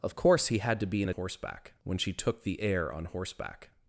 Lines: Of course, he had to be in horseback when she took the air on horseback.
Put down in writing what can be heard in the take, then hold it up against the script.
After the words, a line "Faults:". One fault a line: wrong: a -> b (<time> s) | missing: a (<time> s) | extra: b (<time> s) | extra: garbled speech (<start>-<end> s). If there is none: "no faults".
Of course, he had to be in horseback when she took the air on horseback.
Faults:
no faults